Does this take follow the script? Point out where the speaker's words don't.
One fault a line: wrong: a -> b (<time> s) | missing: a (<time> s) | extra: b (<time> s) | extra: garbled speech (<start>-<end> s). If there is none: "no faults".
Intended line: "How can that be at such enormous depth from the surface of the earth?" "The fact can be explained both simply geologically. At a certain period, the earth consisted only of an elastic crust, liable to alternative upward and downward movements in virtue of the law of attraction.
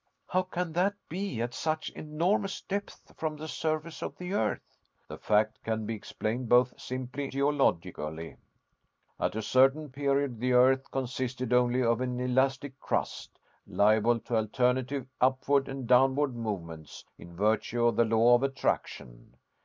no faults